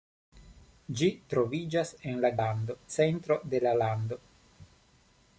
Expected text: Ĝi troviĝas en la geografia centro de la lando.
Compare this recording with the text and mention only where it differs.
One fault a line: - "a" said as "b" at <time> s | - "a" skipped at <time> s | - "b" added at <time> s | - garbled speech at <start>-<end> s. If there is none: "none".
- "geografia" said as "lando" at 2.4 s